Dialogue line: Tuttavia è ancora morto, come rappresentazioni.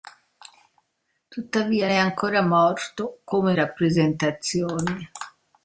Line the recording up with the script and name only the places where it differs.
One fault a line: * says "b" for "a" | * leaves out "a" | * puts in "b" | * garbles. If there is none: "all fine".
all fine